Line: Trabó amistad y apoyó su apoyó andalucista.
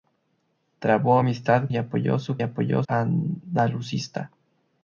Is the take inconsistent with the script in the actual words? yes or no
no